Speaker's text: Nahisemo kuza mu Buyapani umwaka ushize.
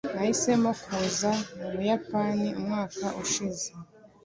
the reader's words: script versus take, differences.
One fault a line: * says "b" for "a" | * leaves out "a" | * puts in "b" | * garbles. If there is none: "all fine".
all fine